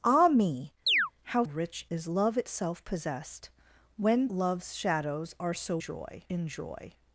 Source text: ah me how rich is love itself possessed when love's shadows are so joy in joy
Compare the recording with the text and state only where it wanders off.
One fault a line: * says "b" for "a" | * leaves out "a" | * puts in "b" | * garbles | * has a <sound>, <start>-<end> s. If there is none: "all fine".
* has a chirp, 0.9-1.1 s